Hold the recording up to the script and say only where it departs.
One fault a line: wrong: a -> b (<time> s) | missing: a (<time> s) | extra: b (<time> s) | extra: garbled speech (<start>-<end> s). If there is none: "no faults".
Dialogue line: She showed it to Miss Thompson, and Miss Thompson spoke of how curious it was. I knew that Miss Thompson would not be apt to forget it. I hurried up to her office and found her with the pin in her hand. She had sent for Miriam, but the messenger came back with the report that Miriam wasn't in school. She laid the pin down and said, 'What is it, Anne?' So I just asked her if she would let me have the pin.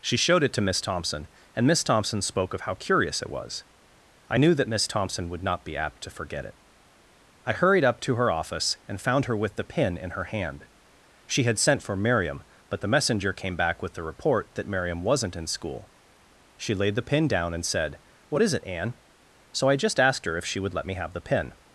no faults